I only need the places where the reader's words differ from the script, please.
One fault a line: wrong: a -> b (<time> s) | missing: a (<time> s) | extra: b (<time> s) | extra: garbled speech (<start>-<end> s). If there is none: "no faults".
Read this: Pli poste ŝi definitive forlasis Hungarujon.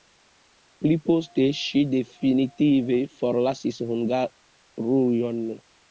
no faults